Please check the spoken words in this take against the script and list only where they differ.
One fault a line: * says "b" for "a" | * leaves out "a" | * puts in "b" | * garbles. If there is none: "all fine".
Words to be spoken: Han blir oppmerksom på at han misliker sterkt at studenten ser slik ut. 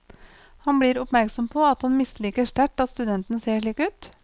all fine